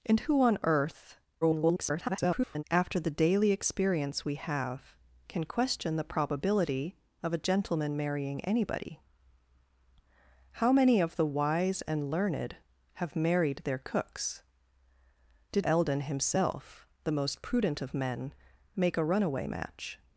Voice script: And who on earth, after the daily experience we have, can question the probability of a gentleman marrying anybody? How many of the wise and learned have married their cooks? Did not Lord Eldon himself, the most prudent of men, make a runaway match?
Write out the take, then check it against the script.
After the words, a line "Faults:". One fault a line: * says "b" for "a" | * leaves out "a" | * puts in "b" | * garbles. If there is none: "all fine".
And who on earth, [garbled] after the daily experience we have, can question the probability of a gentleman marrying anybody? How many of the wise and learned have married their cooks? Did Eldon himself, the most prudent of men, make a runaway match?
Faults:
* garbles
* leaves out "not Lord"